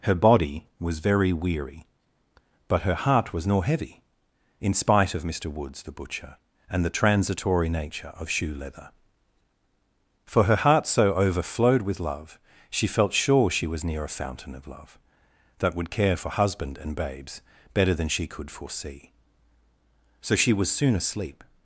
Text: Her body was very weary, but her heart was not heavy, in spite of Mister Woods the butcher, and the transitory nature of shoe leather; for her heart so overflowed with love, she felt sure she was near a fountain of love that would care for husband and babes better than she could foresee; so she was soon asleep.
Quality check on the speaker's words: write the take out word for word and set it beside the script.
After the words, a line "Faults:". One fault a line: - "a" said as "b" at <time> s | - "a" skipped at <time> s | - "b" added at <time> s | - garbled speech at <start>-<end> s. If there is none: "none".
Her body was very weary, but her heart was nor heavy, in spite of Mister Woods the butcher, and the transitory nature of shoe leather; for her heart so overflowed with love, she felt sure she was near a fountain of love that would care for husband and babes better than she could foresee; so she was soon asleep.
Faults:
- "not" said as "nor" at 3.5 s